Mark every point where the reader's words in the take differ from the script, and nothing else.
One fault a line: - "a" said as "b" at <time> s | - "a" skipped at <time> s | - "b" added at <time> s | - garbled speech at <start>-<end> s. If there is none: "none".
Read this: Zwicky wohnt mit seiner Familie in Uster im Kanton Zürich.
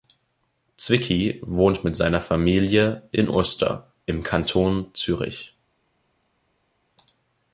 none